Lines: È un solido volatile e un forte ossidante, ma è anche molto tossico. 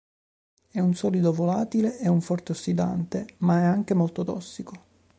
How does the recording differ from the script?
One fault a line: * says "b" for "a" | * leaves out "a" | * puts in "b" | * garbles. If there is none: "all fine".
all fine